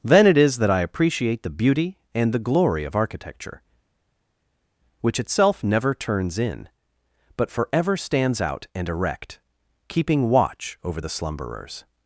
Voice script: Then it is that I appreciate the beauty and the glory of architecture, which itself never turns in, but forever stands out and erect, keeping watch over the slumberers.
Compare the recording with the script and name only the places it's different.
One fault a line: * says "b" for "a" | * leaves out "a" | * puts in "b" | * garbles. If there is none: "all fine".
all fine